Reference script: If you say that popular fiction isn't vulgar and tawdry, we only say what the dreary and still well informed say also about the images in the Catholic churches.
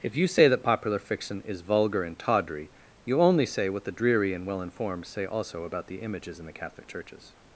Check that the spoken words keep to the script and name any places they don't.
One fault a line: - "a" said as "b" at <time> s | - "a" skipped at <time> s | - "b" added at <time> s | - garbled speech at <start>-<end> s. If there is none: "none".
- "isn't" said as "is" at 1.4 s
- "we" said as "you" at 3.0 s
- "still" skipped at 4.5 s